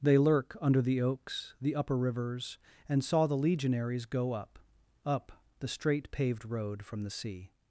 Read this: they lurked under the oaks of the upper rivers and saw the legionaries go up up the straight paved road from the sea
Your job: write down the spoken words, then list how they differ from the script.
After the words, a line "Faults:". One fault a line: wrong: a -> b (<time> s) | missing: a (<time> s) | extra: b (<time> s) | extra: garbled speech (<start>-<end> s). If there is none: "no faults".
they lurk under the oaks the upper rivers and saw the legionaries go up up the straight paved road from the sea
Faults:
wrong: lurked -> lurk (0.2 s)
missing: of (1.5 s)